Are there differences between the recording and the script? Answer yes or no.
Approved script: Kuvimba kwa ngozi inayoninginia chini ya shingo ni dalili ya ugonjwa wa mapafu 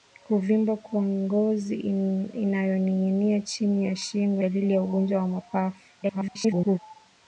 yes